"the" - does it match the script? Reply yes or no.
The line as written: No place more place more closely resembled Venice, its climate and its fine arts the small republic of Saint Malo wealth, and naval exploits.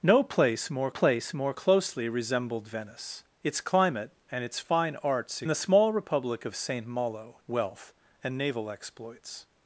yes